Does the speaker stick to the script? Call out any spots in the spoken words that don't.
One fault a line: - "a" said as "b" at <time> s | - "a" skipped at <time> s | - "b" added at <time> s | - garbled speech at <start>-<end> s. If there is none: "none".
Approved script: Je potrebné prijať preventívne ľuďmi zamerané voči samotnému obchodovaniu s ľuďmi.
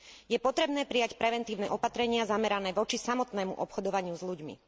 - "ľuďmi" said as "opatrenia" at 1.7 s